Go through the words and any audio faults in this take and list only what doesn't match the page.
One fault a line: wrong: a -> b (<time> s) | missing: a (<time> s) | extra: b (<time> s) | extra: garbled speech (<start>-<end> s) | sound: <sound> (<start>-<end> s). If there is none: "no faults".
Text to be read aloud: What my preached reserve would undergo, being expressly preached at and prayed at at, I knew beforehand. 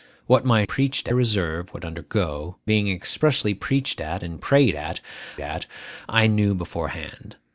no faults